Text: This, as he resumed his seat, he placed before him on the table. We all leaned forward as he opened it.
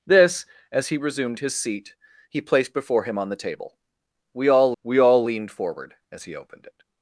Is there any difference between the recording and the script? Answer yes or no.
yes